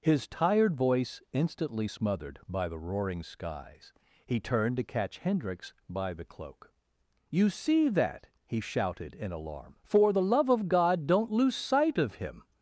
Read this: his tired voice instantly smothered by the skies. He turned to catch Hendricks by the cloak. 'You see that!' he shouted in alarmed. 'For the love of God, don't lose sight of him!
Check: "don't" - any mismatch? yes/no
no